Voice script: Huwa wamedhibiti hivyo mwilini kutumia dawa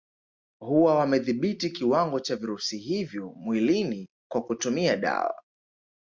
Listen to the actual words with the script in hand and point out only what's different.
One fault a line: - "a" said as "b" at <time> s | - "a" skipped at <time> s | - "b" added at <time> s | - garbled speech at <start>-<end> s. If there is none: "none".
- "kiwango cha virusi" added at 1.7 s
- "kwa" added at 4.3 s